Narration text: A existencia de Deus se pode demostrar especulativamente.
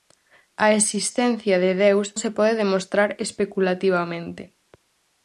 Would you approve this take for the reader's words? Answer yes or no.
yes